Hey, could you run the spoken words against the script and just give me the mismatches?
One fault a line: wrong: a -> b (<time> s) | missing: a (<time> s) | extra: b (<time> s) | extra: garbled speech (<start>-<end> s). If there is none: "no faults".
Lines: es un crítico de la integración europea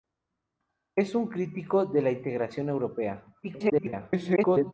extra: garbled speech (3.4-4.7 s)